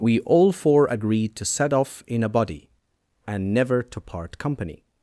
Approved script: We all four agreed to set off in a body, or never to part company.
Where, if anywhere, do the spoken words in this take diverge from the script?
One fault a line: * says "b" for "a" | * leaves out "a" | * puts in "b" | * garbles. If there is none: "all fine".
* says "and" for "or"